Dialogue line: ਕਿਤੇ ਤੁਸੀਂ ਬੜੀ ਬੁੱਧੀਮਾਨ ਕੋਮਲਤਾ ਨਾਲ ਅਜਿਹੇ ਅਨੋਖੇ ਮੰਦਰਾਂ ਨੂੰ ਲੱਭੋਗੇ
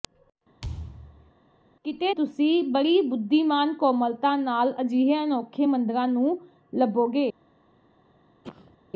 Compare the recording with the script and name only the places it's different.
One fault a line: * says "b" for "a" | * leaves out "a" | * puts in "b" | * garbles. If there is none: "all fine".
all fine